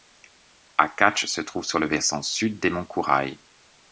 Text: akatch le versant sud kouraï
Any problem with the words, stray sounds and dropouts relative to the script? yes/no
yes